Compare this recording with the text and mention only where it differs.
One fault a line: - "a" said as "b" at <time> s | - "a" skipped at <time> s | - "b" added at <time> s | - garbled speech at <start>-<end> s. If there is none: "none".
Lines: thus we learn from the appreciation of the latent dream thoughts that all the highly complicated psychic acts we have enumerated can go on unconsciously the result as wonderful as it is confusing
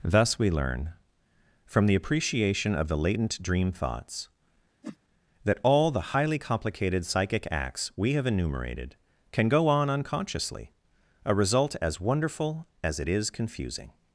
- "the" said as "a" at 11.2 s